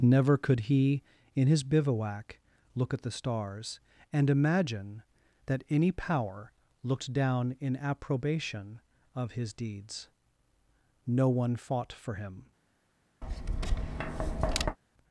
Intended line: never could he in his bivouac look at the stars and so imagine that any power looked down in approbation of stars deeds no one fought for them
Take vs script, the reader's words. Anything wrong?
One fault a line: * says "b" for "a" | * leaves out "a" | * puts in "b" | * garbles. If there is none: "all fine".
* leaves out "so"
* says "his" for "stars"
* says "him" for "them"